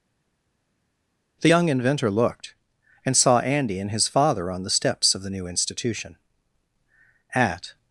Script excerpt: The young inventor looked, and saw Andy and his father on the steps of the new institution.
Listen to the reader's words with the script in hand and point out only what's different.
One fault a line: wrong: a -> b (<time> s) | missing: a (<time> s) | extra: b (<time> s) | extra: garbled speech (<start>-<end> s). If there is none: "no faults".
extra: At (7.3 s)